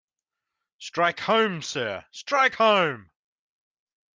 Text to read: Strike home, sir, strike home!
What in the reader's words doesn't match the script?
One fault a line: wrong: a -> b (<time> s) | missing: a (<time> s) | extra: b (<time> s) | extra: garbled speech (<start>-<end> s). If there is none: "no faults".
no faults